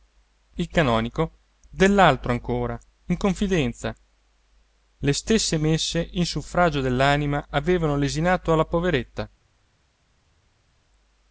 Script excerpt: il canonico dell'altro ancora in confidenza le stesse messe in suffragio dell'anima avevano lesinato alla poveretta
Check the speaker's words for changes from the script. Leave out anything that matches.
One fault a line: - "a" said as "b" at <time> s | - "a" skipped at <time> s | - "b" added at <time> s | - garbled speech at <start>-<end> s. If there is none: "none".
none